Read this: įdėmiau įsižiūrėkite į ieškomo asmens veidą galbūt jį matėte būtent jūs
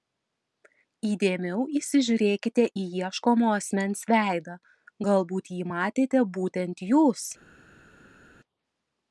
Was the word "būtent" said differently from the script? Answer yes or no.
no